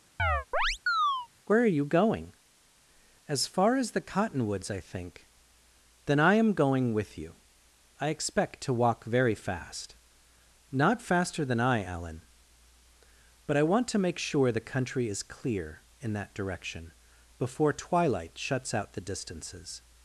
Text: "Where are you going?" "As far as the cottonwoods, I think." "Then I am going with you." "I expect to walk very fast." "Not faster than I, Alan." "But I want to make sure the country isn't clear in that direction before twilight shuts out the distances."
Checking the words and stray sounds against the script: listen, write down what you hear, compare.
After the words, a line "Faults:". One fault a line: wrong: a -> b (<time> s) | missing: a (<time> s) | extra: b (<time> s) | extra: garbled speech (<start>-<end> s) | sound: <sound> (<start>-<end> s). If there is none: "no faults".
"Where are you going?" "As far as the cottonwoods, I think." "Then I am going with you." "I expect to walk very fast." "Not faster than I, Alan." "But I want to make sure the country is clear in that direction before twilight shuts out the distances."
Faults:
sound: chirp (0.2-1.3 s)
wrong: isn't -> is (15.1 s)